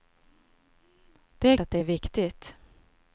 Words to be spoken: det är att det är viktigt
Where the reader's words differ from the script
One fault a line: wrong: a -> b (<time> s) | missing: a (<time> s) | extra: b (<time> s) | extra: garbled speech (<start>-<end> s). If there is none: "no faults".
no faults